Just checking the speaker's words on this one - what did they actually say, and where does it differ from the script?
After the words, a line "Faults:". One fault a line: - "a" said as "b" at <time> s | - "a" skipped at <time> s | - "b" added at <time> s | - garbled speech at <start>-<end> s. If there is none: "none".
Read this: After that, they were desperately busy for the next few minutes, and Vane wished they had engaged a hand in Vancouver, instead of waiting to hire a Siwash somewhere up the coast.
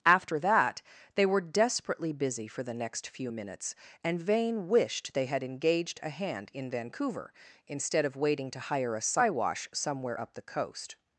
After that, they were desperately busy for the next few minutes, and Vane wished they had engaged a hand in Vancouver, instead of waiting to hire a Siwash somewhere up the coast.
Faults:
none